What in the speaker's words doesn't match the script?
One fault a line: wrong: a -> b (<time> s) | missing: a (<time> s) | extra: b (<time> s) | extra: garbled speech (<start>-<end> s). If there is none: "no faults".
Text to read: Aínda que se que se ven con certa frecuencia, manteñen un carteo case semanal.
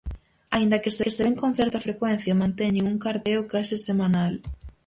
no faults